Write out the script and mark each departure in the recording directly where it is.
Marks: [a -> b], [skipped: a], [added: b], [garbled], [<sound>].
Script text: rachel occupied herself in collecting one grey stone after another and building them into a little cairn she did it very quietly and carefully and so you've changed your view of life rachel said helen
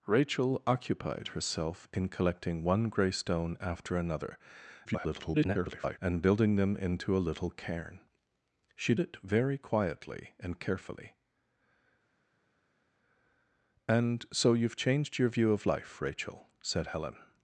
rachel occupied herself in collecting one grey stone after another [garbled] and building them into a little cairn she [skipped: did] it very quietly and carefully and so you've changed your view of life rachel said helen